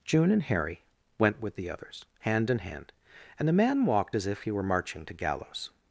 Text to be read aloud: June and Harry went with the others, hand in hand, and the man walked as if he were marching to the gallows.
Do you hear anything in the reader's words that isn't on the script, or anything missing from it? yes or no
yes